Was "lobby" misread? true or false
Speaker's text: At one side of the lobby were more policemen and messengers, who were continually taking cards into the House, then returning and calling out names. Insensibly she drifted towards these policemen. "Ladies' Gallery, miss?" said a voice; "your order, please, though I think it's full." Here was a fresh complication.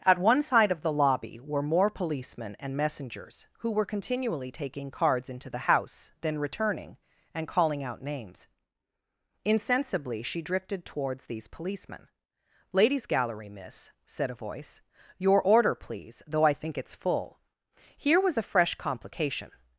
false